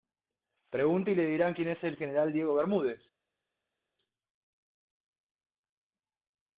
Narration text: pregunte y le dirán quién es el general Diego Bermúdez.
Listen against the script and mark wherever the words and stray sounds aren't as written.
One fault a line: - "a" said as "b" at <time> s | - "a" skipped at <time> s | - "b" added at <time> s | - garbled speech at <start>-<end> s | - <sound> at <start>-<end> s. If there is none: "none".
none